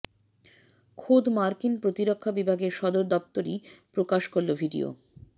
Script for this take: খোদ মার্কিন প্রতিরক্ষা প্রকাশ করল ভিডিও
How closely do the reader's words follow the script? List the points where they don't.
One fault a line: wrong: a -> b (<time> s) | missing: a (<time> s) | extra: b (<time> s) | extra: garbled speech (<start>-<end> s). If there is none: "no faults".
extra: বিভাগের সদর দপ্তরই (2.3 s)